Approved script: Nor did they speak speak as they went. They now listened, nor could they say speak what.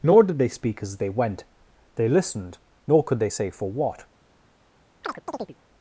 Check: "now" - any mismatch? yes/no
yes